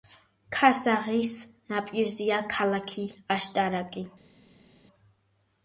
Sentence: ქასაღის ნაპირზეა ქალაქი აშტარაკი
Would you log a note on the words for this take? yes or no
no